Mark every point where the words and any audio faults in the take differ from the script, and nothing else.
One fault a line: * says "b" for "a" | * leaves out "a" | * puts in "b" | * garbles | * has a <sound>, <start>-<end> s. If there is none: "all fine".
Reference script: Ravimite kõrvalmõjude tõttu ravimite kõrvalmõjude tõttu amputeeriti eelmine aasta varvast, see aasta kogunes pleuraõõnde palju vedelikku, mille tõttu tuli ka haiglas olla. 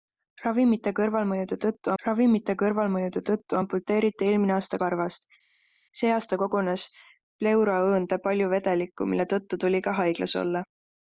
all fine